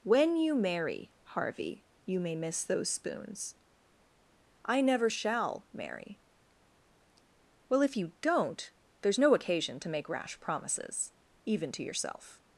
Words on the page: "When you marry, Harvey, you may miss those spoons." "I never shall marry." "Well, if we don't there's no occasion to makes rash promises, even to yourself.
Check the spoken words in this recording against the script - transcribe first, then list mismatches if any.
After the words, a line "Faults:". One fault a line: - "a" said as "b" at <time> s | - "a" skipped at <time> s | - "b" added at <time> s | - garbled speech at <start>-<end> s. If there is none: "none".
"When you marry, Harvey, you may miss those spoons." "I never shall marry." "Well, if you don't there's no occasion to make rash promises, even to yourself.
Faults:
- "we" said as "you" at 8.0 s
- "makes" said as "make" at 9.9 s